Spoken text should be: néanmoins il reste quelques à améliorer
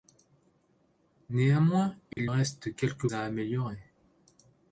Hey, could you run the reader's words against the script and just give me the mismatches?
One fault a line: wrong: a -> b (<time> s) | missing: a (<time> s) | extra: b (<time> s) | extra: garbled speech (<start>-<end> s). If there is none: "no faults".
no faults